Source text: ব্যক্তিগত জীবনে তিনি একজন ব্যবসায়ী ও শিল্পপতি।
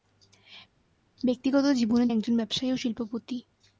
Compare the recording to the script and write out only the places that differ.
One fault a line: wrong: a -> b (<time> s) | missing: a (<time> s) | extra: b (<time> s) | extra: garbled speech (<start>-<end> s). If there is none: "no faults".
missing: তিনি (2.1 s)